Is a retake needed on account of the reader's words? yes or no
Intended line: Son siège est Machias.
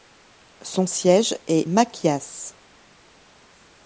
no